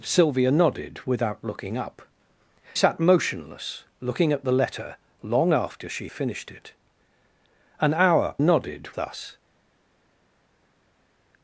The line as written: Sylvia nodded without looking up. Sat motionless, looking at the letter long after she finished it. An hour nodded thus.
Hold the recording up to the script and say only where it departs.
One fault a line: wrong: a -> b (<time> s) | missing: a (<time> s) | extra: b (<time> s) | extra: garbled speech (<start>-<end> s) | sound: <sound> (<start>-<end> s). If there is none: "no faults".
no faults